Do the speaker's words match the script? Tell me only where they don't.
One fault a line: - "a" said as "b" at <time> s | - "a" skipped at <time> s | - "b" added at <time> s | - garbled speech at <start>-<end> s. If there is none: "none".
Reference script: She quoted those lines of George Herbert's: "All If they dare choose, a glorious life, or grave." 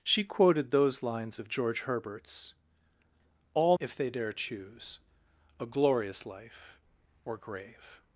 none